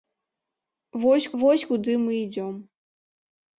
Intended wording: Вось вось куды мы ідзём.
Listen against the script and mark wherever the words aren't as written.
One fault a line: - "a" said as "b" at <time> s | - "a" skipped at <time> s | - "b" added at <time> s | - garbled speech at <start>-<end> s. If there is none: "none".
none